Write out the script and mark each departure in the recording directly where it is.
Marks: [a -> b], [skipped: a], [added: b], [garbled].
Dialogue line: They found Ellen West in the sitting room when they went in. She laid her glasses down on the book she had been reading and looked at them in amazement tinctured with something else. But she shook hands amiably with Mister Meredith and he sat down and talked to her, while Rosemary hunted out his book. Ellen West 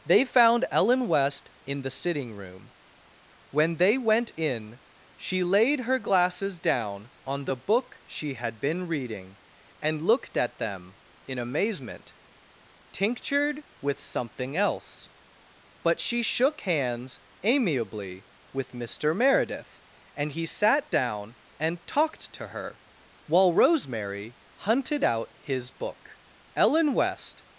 They found Ellen West in the sitting room when they went in. She laid her glasses down on the book she had been reading and looked at them in amazement tinctured with something else. But she shook hands amiably with Mister Meredith and he sat down and talked to her, while Rosemary hunted out his book. Ellen West